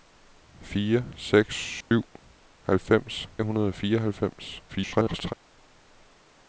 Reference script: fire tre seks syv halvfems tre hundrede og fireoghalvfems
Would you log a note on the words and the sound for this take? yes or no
yes